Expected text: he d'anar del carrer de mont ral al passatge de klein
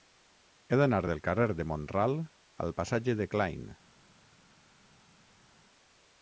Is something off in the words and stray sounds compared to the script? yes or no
no